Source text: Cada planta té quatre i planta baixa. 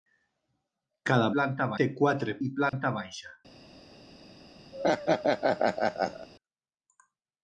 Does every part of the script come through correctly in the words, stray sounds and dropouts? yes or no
no